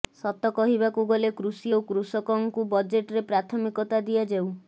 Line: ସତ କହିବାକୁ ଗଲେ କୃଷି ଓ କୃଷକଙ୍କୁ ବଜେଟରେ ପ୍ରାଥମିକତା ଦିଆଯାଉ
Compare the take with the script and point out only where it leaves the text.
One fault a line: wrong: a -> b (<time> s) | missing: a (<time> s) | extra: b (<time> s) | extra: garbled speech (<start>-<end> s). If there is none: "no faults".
no faults